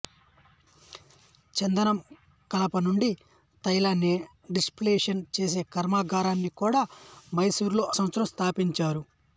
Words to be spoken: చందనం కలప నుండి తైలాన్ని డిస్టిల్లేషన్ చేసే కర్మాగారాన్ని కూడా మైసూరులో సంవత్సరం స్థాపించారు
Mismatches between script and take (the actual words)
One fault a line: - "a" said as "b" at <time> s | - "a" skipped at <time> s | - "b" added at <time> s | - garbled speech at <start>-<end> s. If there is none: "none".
none